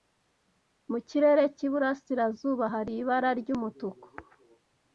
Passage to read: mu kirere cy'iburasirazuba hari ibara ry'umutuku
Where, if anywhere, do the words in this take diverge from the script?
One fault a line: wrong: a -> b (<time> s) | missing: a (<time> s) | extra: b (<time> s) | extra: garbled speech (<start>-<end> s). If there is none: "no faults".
no faults